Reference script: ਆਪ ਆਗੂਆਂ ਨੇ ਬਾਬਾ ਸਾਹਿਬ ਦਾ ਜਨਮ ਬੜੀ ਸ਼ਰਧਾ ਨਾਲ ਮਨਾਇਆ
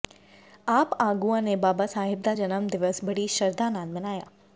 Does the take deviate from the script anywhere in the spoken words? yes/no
yes